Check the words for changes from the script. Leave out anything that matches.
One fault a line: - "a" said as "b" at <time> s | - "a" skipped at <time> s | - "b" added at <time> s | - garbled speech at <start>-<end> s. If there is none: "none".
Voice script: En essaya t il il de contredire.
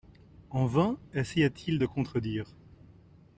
- "vain" added at 0.7 s
- "il" skipped at 1.8 s